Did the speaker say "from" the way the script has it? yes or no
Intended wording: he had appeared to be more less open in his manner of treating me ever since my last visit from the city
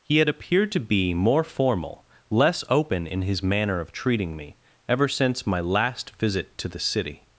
no